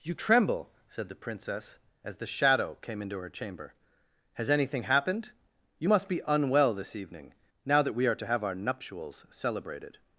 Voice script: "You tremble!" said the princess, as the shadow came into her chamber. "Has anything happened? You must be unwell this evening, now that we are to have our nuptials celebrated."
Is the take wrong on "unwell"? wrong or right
right